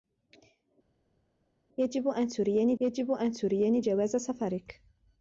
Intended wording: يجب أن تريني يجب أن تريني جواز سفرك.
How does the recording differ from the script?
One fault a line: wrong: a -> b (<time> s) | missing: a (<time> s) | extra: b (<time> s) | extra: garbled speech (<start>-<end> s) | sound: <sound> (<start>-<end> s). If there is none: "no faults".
no faults